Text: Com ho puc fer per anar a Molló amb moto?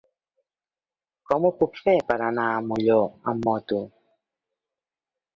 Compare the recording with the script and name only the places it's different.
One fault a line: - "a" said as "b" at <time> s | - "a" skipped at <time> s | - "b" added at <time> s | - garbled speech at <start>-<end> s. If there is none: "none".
none